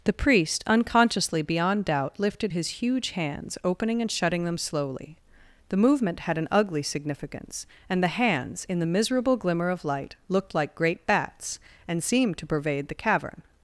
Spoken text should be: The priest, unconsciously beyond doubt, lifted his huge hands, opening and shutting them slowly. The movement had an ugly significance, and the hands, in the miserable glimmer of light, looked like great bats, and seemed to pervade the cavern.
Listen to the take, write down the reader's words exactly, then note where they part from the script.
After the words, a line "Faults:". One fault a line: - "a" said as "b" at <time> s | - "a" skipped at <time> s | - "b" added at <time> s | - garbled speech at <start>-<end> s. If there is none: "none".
The priest, unconsciously beyond doubt, lifted his huge hands, opening and shutting them slowly. The movement had an ugly significance, and the hands, in the miserable glimmer of light, looked like great bats, and seemed to pervade the cavern.
Faults:
none